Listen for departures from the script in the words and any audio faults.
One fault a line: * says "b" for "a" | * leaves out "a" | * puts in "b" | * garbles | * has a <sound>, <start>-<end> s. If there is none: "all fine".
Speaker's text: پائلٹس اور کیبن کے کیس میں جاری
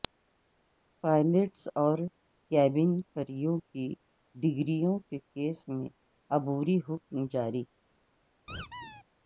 * puts in "کریو کی ڈگریوں"
* puts in "عبوری حکم"
* has a squeak, 8.5-9.0 s